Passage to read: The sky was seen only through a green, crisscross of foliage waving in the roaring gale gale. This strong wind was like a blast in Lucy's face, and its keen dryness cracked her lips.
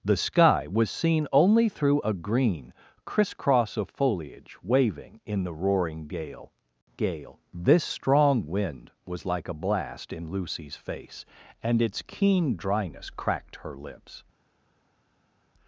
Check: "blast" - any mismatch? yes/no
no